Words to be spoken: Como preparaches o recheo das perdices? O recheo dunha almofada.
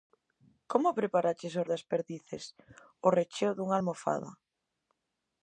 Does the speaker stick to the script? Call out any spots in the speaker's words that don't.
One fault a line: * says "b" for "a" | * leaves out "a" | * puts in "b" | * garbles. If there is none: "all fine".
* leaves out "recheo"